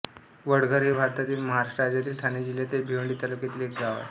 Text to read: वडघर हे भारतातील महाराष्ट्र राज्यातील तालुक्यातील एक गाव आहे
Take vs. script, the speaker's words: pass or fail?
fail